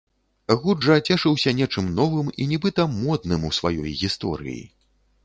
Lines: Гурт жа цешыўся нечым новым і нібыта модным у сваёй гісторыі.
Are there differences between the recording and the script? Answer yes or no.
no